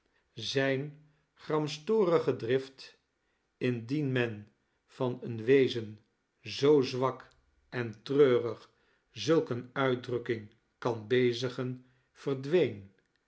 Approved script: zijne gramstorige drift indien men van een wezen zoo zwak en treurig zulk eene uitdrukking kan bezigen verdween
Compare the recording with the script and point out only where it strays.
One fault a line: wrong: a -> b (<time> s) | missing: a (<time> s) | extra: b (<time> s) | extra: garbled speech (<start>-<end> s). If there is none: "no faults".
no faults